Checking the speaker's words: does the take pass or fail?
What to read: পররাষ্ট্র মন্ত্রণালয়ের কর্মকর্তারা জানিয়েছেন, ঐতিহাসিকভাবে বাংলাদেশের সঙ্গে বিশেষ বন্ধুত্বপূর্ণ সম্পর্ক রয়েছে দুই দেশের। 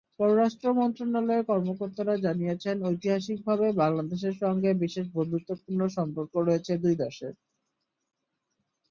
pass